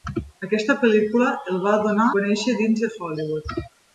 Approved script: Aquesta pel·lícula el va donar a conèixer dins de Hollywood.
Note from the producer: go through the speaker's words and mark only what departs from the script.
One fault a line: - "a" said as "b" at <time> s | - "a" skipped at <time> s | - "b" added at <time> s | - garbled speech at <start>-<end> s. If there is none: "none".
- "a" skipped at 2.1 s